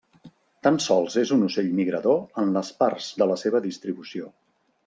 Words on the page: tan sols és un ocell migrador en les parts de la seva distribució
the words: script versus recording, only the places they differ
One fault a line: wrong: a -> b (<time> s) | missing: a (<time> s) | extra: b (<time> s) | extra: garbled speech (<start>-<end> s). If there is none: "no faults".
no faults